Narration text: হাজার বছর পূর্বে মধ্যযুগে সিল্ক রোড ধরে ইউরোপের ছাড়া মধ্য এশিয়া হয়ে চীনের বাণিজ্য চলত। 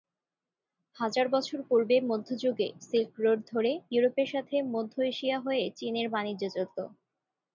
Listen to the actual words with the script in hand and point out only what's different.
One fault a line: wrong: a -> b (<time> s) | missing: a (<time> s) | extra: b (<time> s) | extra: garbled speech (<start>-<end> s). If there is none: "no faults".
wrong: ছাড়া -> সাথে (4.3 s)